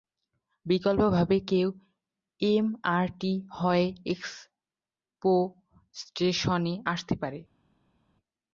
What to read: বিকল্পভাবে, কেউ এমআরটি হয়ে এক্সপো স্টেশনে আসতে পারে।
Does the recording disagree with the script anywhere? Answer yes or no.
no